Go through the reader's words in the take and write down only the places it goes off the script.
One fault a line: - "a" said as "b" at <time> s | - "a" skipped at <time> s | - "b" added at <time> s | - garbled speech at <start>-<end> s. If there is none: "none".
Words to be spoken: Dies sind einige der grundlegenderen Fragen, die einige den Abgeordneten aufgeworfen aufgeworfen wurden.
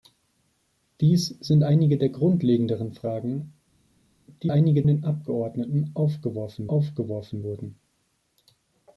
none